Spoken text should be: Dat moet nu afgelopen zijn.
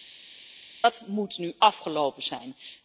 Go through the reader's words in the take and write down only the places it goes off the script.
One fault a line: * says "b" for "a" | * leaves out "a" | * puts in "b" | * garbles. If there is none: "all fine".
all fine